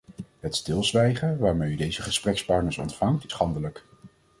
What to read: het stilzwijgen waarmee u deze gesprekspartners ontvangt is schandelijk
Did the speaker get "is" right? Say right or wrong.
wrong